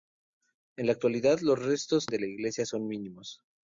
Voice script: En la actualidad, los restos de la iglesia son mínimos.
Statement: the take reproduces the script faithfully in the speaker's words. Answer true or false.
true